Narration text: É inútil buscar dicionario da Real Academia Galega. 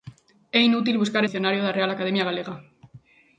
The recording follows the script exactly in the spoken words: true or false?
true